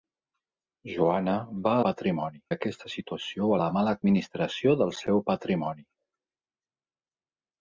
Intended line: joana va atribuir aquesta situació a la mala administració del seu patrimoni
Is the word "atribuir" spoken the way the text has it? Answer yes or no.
no